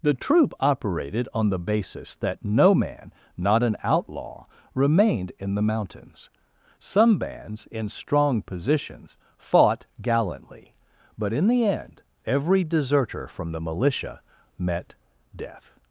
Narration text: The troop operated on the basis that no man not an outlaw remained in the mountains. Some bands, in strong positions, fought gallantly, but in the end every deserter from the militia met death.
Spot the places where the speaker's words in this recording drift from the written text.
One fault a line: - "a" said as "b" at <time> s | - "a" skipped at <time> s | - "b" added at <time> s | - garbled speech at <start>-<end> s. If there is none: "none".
none